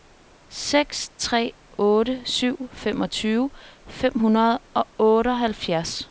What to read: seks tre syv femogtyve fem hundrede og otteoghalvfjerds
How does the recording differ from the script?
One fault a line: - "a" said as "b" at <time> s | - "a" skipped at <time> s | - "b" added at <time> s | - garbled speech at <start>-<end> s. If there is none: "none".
- "otte" added at 1.8 s